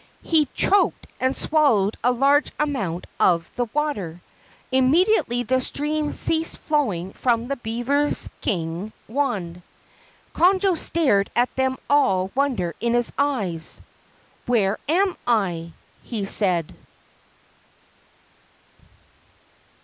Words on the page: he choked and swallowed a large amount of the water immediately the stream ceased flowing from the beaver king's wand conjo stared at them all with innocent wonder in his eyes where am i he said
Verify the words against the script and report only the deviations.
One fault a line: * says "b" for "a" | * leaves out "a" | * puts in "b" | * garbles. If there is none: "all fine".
* leaves out "with innocent"